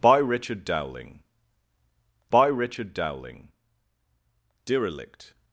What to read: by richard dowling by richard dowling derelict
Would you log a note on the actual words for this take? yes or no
no